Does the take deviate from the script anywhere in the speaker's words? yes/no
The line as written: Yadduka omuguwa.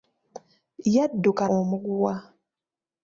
no